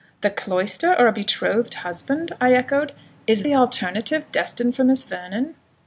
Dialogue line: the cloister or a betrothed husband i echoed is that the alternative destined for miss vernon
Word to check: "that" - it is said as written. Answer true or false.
false